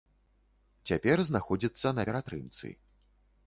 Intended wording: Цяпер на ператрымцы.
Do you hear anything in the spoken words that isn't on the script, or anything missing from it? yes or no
yes